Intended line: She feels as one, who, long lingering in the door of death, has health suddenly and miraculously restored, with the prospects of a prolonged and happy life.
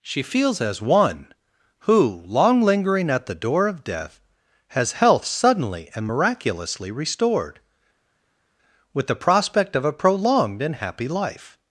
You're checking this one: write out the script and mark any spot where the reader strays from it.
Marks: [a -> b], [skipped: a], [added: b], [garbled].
She feels as one, who, long lingering [in -> at] the door of death, has health suddenly and miraculously restored, with the [prospects -> prospect] of a prolonged and happy life.